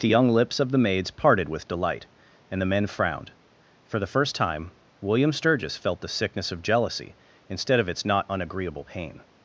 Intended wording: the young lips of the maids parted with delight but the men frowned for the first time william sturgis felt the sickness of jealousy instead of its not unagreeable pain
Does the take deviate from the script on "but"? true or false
true